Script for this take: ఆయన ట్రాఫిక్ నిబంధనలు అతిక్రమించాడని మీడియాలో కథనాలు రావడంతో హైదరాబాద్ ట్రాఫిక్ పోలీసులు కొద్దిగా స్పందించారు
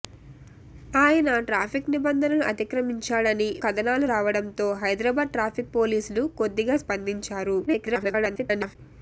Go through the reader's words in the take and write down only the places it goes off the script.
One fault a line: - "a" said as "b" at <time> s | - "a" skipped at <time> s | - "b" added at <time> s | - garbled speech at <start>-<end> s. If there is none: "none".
- "మీడియాలో" skipped at 3.5 s
- garbled speech at 7.7-8.8 s